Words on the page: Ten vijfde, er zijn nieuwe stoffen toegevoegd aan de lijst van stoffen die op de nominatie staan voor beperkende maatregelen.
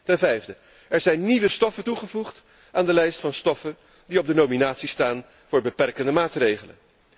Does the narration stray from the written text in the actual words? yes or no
no